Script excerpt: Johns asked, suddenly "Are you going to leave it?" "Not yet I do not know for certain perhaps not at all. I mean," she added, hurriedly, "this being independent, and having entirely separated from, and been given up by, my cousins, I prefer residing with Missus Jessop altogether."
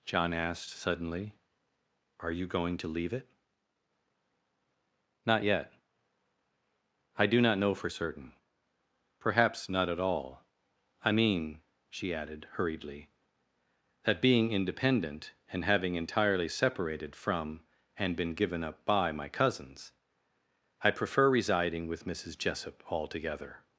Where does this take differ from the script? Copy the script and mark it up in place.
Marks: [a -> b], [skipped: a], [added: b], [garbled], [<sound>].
[Johns -> John] asked, suddenly "Are you going to leave it?" "Not yet I do not know for certain perhaps not at all. I mean," she added, hurriedly, ["this -> that] being independent, and having entirely separated from, and been given up by, my cousins, I prefer residing with Missus Jessop altogether."